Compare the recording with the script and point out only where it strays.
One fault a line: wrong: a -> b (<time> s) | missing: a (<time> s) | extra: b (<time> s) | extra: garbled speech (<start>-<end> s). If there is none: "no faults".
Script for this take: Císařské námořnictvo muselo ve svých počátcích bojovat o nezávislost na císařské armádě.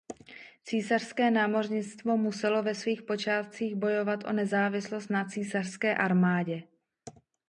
no faults